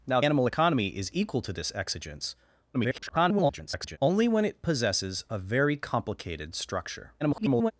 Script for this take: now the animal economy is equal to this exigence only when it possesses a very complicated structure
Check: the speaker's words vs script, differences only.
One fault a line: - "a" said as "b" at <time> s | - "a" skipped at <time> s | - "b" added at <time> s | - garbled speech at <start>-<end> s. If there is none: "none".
- "the" skipped at 0.2 s
- garbled speech at 2.7-4.0 s
- garbled speech at 7.2-7.7 s